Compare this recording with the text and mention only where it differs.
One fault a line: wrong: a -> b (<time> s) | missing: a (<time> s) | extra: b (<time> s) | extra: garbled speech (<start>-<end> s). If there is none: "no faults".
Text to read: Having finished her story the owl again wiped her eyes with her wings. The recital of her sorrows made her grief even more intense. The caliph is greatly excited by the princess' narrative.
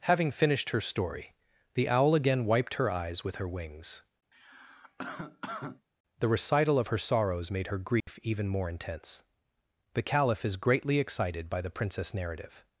no faults